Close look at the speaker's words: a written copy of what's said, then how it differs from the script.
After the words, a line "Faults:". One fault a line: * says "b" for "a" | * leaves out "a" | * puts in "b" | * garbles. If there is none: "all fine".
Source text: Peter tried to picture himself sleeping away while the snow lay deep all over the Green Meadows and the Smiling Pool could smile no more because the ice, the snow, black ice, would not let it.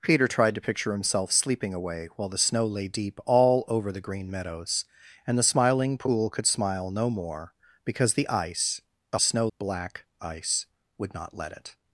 Peter tried to picture himself sleeping away while the snow lay deep all over the Green Meadows and the Smiling Pool could smile no more because the ice, the snow, black ice, would not let it.
Faults:
all fine